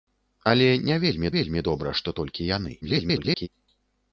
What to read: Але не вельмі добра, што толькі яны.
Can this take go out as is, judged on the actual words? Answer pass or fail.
fail